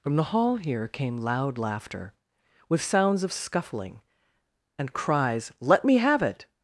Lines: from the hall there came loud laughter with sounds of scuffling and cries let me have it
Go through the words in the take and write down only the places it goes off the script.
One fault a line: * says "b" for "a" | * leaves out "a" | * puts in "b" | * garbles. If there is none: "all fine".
* says "here" for "there"